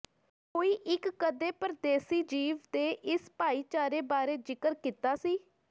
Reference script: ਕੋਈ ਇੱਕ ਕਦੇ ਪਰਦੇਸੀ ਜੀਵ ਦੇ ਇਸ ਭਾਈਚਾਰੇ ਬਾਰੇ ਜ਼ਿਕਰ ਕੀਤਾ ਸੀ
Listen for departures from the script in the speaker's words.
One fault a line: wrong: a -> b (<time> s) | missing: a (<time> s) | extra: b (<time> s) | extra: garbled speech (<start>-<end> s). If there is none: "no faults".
no faults